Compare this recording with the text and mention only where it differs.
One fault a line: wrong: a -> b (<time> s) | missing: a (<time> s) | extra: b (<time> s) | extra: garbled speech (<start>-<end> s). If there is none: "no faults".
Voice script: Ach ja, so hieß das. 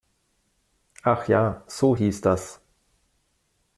no faults